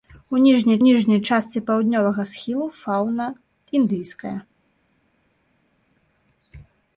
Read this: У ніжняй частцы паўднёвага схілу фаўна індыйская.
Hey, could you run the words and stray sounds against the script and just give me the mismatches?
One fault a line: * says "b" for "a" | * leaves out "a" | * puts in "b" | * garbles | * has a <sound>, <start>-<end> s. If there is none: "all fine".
* puts in "ніжняй"